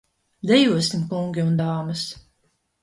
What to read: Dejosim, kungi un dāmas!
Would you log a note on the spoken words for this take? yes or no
no